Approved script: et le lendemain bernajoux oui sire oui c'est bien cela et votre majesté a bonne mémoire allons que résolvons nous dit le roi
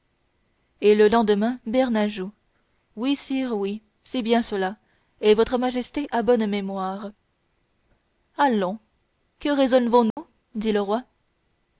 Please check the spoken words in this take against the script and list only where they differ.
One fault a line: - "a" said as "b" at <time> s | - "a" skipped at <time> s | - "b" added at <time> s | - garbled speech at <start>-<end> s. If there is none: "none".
none